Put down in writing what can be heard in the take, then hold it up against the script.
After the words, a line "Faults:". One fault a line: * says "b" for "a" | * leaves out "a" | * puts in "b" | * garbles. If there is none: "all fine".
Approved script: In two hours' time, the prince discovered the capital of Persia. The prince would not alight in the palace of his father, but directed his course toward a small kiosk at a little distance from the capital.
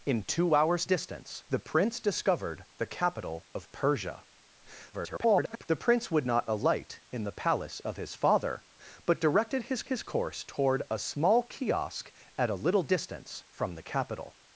In two hours' distance, the prince discovered the capital of Persia. [garbled] The prince would not alight in the palace of his father, but directed his his course toward a small kiosk at a little distance from the capital.
Faults:
* says "distance" for "time"
* garbles
* puts in "his"